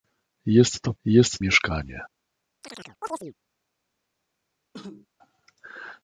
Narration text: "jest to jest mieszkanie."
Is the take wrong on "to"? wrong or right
right